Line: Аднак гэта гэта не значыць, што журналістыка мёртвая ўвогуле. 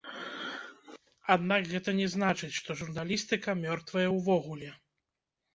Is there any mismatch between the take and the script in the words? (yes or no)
yes